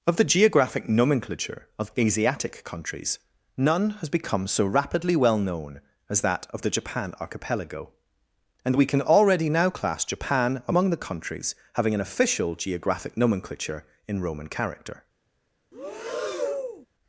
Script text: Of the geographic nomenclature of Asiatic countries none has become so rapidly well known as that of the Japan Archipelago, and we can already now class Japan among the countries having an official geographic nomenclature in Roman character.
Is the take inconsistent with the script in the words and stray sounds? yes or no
yes